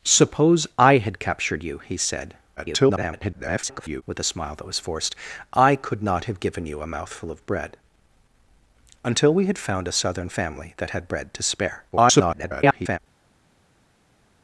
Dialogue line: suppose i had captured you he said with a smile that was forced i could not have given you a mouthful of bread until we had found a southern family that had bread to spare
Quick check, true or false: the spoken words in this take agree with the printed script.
false